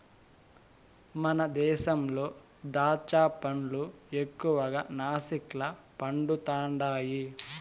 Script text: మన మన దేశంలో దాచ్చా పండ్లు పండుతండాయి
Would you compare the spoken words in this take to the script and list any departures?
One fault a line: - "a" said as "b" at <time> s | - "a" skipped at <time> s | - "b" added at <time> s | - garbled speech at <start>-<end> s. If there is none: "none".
- "మన" skipped at 1.4 s
- "ఎక్కువగా నాసిక్ల" added at 4.2 s